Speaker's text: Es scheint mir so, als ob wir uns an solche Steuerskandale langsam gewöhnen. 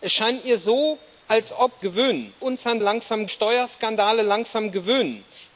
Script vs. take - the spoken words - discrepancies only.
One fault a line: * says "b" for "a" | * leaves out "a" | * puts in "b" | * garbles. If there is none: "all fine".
* says "gewöhnen" for "wir"
* says "langsam" for "solche"